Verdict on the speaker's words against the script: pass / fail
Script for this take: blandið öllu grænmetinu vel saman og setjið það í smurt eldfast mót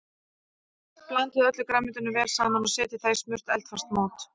pass